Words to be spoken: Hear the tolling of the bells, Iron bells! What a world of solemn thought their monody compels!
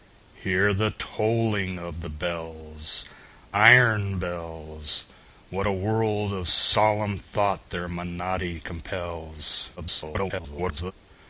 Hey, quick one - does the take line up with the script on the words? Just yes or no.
no